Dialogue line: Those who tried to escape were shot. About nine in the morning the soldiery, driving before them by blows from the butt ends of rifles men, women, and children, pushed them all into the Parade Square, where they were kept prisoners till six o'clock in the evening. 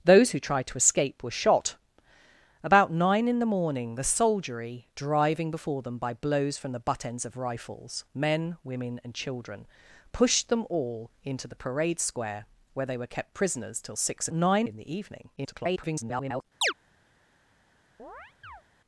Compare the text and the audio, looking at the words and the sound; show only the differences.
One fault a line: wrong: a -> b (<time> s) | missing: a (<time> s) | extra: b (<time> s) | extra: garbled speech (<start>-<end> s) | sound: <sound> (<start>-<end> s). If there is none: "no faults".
wrong: o'clock -> nine (14.3 s)
extra: garbled speech (15.4-16.4 s)
sound: chirp (16.6-16.7 s)
sound: chirp (18.0-18.6 s)